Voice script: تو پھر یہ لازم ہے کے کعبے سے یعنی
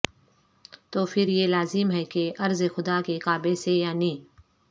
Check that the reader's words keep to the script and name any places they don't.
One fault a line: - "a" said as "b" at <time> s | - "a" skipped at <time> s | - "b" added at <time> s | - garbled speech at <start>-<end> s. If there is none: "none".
- "کہ ارض خدا" added at 2.0 s